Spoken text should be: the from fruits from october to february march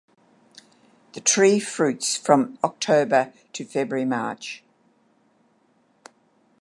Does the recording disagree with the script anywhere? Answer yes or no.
yes